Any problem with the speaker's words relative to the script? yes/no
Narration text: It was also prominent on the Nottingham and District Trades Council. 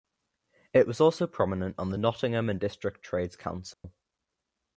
no